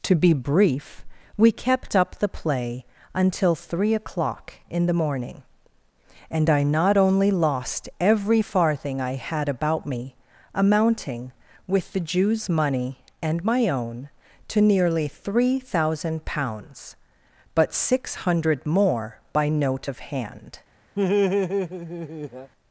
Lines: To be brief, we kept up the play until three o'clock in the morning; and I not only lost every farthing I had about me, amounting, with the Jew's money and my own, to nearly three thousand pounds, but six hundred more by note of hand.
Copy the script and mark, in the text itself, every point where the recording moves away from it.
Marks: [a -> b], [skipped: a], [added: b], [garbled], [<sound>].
To be brief, we kept up the play until three o'clock in the morning; and I not only lost every farthing I had about me, amounting, with the Jew's money and my own, to nearly three thousand pounds, but six hundred more by note of hand. [laugh]